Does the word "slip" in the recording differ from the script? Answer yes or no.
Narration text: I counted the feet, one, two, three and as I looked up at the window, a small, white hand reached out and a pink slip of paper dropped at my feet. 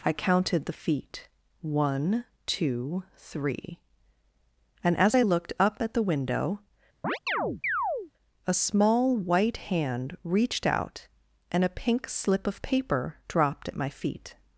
no